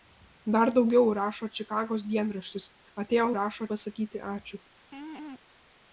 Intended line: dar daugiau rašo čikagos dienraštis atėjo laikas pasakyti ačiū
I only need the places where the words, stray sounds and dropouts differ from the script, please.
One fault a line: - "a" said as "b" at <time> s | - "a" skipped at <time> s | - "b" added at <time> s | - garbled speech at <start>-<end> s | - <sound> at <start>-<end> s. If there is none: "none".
- "laikas" said as "rašo" at 3.4 s
- laugh at 4.9-5.4 s